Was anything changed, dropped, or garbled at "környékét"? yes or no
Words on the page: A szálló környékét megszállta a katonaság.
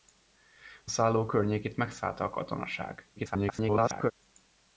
no